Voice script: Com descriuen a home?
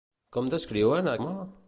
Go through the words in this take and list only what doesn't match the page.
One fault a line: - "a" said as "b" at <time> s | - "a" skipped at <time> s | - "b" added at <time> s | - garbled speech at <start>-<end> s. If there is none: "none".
none